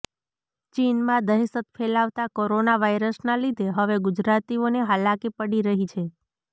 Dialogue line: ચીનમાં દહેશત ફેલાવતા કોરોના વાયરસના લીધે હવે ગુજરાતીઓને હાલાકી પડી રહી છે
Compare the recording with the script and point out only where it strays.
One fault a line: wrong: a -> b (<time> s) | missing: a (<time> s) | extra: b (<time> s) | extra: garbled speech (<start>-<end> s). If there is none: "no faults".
no faults